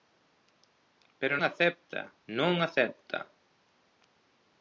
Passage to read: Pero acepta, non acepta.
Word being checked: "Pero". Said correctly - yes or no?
yes